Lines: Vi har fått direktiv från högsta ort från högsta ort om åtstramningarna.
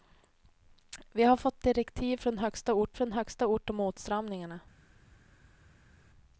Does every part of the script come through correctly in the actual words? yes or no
yes